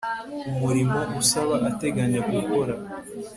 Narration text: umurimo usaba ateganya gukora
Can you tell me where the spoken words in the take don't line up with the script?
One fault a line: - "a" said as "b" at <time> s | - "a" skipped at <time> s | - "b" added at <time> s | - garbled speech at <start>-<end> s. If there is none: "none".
none